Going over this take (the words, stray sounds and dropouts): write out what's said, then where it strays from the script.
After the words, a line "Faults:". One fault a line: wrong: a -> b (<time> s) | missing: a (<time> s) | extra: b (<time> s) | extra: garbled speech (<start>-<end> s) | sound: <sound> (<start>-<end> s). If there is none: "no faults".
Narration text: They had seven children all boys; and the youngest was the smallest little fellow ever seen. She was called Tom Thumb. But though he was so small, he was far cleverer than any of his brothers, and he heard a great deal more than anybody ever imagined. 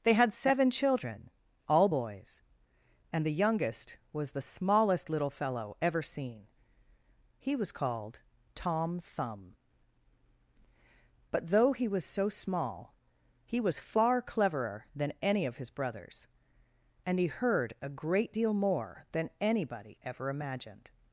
They had seven children all boys; and the youngest was the smallest little fellow ever seen. He was called Tom Thumb. But though he was so small, he was far cleverer than any of his brothers, and he heard a great deal more than anybody ever imagined.
Faults:
wrong: She -> He (7.4 s)